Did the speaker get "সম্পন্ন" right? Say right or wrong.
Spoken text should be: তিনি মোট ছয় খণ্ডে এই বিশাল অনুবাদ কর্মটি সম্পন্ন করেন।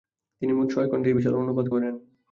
wrong